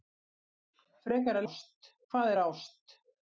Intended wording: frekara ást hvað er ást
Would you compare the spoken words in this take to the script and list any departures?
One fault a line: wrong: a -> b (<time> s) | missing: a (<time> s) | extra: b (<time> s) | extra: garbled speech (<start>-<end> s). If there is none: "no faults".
no faults